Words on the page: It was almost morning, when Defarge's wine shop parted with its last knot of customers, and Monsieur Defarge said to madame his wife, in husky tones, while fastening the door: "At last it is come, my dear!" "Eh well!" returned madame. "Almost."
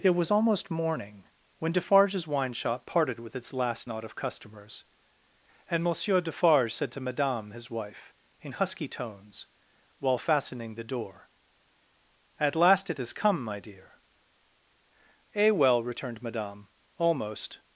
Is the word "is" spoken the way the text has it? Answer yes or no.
no